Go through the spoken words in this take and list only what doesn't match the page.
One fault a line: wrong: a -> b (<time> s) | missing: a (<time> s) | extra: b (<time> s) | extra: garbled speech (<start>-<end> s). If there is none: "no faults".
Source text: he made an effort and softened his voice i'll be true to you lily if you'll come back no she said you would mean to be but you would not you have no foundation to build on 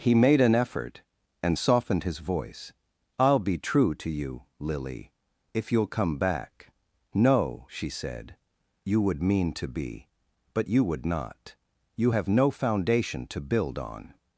no faults